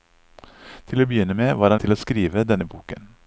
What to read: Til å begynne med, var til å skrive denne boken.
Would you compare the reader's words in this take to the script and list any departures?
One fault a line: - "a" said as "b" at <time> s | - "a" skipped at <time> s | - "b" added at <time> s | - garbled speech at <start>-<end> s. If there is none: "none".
none